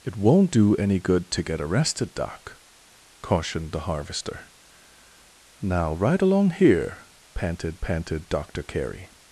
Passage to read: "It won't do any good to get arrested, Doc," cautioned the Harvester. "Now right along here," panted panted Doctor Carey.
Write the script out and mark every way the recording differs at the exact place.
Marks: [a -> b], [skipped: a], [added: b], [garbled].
"It won't do any good to get arrested, Doc," cautioned the Harvester. "Now right along here," panted panted Doctor Carey.